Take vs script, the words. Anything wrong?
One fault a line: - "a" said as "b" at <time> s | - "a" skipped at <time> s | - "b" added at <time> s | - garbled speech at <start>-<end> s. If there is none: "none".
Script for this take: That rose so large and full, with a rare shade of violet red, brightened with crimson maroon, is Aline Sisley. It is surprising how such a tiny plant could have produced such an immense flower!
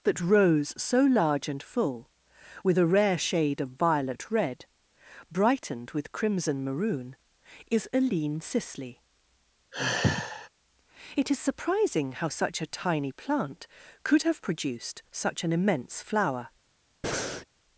none